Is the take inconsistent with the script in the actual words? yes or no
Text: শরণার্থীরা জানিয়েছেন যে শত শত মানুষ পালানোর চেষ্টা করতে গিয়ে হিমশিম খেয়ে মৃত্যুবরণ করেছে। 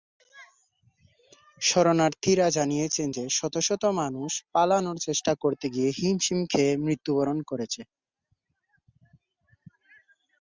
no